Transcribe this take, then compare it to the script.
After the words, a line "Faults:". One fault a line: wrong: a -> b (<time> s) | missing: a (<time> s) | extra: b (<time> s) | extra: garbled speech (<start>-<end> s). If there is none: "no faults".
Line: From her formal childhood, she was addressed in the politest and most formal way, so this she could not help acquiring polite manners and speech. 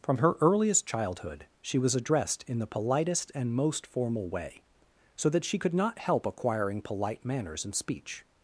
From her earliest childhood, she was addressed in the politest and most formal way, so that she could not help acquiring polite manners and speech.
Faults:
wrong: formal -> earliest (0.4 s)
wrong: this -> that (5.3 s)